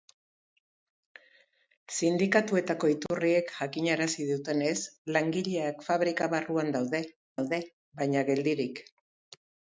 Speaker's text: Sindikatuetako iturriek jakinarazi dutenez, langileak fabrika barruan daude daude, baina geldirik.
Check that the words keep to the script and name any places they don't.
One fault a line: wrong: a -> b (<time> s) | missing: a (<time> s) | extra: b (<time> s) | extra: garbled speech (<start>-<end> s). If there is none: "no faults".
no faults